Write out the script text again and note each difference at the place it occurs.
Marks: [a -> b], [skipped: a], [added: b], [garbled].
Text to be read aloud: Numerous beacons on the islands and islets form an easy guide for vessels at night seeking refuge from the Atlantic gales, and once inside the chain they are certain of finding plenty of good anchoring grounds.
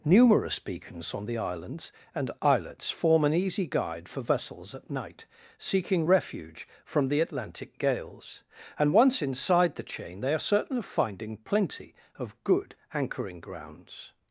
Numerous beacons on the islands and islets form an easy guide for vessels at night seeking refuge from the Atlantic gales, and once inside the chain they are certain of finding plenty of good anchoring grounds.